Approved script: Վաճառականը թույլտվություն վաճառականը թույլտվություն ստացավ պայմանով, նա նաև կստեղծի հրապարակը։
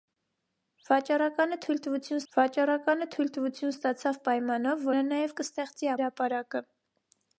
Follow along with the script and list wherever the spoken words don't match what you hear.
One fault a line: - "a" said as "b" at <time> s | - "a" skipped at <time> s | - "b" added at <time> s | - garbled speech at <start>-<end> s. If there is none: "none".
none